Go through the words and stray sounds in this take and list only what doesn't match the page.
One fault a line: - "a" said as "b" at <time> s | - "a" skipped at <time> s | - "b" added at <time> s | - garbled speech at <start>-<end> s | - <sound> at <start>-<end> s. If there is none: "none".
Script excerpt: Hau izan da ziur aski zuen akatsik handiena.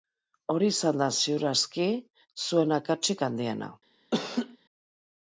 - "Hau" said as "Hori" at 0.5 s
- laugh at 4.1-4.6 s